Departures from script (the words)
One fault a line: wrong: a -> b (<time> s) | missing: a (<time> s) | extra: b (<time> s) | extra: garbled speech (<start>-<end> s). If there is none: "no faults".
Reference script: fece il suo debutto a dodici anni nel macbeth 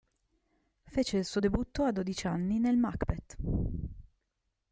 no faults